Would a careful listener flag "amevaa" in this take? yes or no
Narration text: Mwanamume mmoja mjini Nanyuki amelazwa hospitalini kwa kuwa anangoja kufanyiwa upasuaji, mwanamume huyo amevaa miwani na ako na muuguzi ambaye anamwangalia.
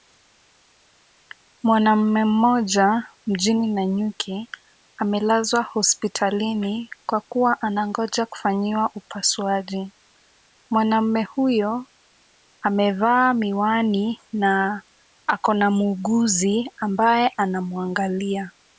no